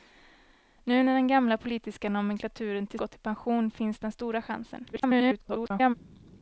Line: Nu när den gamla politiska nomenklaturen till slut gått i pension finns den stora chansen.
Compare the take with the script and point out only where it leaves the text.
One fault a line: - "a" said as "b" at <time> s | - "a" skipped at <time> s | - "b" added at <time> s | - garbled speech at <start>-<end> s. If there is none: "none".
- "slut" skipped at 3.0 s
- garbled speech at 4.9-5.9 s